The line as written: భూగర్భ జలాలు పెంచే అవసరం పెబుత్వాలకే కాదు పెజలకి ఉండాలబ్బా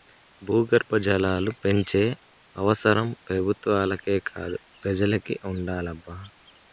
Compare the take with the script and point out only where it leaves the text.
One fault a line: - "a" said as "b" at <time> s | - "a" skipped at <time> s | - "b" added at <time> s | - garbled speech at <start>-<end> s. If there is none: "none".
none